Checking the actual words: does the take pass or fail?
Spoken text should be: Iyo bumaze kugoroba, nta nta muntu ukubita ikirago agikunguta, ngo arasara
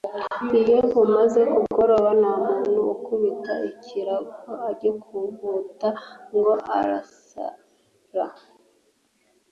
fail